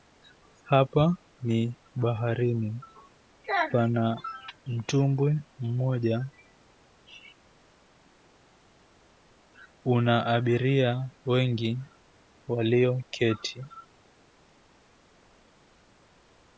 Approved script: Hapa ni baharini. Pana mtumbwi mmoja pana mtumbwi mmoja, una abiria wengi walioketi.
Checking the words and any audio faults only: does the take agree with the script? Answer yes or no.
no